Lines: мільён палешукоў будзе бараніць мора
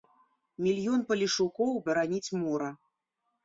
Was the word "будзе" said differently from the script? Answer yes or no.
yes